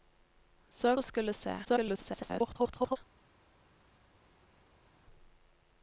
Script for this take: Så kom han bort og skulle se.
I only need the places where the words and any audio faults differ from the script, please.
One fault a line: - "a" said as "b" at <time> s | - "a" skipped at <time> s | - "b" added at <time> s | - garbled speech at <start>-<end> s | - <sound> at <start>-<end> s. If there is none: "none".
- "kom han bort" skipped at 1.0 s
- garbled speech at 1.6-3.0 s